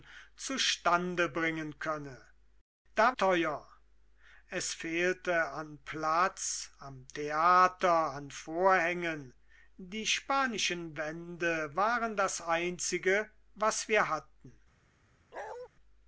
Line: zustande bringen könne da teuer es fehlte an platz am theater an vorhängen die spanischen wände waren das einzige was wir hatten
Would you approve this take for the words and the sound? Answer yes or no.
no